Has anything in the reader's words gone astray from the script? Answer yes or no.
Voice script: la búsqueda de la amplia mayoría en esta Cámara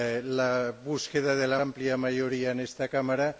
no